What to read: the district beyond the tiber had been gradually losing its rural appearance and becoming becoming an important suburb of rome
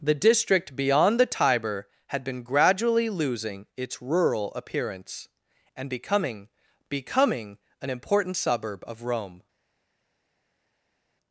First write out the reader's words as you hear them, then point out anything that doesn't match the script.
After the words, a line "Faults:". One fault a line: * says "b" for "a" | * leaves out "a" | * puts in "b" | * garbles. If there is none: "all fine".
the district beyond the tiber had been gradually losing its rural appearance and becoming becoming an important suburb of rome
Faults:
all fine